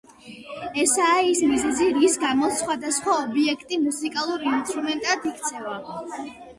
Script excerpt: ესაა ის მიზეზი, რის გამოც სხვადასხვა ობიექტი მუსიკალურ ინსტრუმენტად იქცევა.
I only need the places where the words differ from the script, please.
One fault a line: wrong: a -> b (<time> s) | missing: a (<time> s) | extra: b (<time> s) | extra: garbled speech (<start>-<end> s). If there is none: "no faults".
no faults